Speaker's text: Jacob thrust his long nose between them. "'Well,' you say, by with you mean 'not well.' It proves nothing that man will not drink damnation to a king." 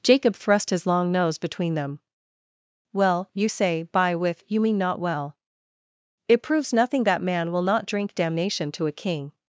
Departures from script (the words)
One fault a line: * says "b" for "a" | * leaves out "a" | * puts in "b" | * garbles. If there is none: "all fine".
all fine